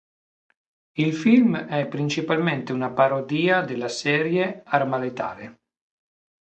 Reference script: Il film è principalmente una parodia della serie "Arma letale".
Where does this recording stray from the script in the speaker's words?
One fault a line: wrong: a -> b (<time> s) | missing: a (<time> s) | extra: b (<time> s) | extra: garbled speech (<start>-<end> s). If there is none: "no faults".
no faults